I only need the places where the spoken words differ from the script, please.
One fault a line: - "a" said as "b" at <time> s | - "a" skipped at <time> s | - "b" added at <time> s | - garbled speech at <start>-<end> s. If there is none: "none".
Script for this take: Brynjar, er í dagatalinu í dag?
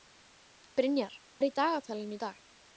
none